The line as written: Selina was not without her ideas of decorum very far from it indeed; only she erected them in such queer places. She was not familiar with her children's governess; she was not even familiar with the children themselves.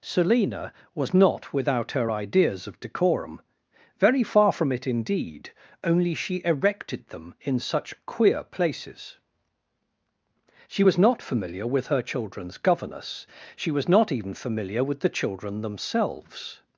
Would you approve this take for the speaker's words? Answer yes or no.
yes